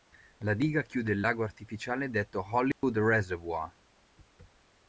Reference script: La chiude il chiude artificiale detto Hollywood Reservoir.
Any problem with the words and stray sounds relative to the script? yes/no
yes